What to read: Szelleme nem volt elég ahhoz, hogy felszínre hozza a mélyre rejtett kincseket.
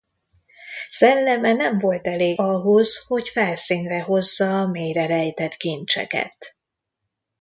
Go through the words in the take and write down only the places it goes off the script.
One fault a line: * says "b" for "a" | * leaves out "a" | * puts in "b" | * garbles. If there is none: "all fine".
all fine